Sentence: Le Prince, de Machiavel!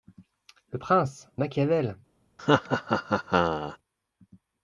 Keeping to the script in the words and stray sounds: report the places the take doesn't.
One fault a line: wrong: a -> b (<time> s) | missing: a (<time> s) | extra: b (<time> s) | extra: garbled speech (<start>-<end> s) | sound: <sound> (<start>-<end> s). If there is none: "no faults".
missing: de (1.3 s)
sound: laugh (2.4-3.8 s)